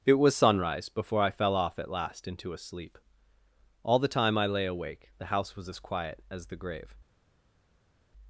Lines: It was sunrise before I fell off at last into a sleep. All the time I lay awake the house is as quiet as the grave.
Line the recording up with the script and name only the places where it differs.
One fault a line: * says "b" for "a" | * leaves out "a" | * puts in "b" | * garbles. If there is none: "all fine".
* says "was" for "is"